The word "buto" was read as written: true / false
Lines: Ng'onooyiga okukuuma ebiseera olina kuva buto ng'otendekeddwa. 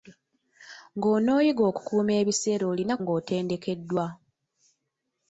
false